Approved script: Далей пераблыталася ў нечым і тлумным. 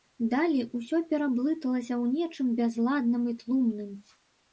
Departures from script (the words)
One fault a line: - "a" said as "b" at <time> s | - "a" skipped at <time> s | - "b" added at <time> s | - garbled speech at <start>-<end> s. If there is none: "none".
- "усё" added at 0.8 s
- "бязладным" added at 2.6 s